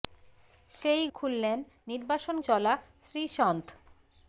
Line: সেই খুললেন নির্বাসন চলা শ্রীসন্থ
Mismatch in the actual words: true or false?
false